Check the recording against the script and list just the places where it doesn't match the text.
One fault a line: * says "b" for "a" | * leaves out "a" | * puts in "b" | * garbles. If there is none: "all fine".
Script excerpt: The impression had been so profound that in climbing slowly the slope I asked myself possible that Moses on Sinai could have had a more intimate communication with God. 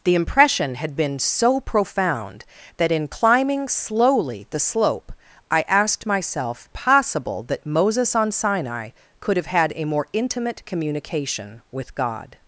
all fine